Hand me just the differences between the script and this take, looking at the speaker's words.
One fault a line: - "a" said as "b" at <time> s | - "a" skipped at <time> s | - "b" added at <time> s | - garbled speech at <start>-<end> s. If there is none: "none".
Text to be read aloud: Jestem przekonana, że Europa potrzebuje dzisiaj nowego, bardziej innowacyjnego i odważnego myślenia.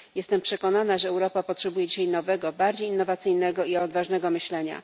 none